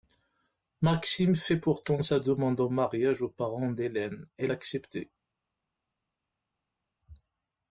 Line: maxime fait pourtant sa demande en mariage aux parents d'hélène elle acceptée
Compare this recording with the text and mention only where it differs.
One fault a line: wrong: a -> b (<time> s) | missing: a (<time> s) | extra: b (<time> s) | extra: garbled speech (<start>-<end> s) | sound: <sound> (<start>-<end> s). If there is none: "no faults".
no faults